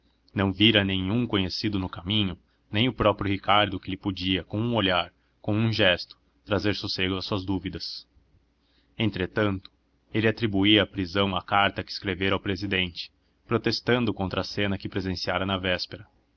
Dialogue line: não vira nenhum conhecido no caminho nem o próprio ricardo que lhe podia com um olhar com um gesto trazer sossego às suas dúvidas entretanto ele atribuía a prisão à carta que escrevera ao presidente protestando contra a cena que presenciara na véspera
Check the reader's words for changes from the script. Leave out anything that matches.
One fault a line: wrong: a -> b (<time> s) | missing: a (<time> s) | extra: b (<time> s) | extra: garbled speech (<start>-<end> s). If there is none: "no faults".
no faults